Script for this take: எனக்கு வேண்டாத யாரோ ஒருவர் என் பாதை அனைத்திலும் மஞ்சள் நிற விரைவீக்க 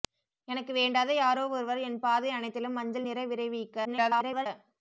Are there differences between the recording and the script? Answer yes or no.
yes